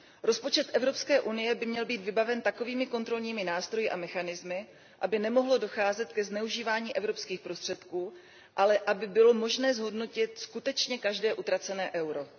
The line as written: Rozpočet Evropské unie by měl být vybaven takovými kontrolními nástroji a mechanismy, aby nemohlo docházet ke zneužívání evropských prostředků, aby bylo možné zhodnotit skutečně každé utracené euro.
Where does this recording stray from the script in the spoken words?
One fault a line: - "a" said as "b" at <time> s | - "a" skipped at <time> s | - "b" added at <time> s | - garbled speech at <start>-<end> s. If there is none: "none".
- "ale" added at 8.6 s